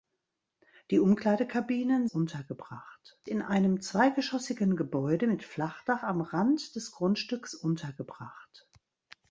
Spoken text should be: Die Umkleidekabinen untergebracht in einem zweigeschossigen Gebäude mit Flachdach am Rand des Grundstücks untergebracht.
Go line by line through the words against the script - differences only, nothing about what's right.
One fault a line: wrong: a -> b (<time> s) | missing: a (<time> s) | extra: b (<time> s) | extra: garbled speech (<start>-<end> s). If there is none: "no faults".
no faults